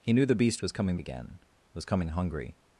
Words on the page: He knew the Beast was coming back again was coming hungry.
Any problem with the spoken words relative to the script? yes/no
yes